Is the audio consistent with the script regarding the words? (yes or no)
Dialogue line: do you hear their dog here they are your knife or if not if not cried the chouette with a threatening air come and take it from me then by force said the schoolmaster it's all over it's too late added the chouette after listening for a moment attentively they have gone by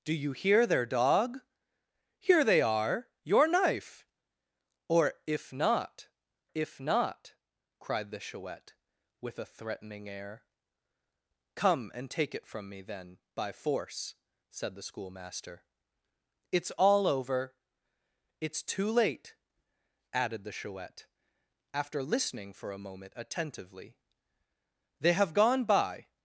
yes